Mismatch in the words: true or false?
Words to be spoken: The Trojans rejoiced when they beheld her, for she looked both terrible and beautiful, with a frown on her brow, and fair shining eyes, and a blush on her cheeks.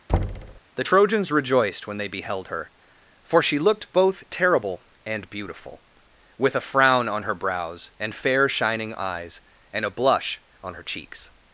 true